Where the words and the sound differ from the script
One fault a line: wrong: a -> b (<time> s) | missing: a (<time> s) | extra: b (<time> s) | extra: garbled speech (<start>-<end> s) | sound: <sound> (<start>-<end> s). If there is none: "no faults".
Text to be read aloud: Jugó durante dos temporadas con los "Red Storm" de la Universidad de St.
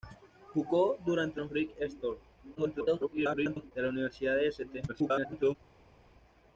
missing: dos temporadas con (1.4 s)
extra: garbled speech (2.5-3.7 s)
extra: garbled speech (4.9-5.6 s)